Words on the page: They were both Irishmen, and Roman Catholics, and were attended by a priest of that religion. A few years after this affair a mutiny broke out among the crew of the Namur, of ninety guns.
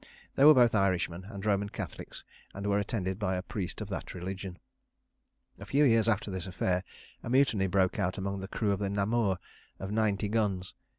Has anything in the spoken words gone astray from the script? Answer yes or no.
no